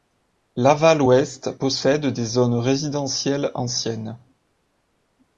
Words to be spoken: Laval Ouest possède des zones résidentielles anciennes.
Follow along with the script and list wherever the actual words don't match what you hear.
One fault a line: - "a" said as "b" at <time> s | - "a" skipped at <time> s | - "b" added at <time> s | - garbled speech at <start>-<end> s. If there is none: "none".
none